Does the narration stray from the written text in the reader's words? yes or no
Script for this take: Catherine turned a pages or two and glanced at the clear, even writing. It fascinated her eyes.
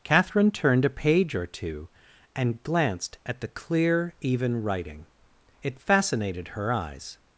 yes